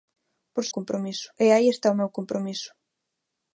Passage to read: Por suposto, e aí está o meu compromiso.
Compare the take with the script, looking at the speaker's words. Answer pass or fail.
fail